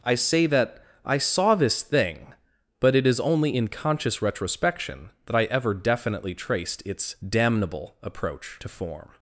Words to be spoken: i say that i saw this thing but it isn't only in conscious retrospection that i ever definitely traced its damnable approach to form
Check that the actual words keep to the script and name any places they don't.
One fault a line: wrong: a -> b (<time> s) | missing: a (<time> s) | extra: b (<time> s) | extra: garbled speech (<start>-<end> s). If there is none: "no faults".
wrong: isn't -> is (3.1 s)